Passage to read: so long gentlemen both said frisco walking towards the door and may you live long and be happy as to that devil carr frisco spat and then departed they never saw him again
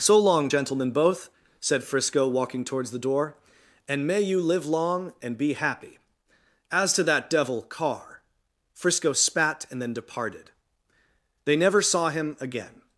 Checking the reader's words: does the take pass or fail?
pass